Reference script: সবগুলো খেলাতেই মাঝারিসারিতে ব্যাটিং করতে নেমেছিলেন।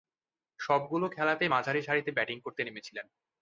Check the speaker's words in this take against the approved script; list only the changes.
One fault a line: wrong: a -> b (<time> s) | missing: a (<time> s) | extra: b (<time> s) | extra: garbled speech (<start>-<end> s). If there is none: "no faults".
no faults